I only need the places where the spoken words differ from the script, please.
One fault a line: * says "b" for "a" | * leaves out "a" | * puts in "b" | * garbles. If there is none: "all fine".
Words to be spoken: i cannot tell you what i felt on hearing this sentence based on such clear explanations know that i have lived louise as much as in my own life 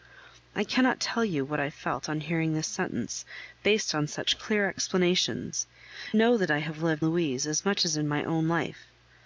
all fine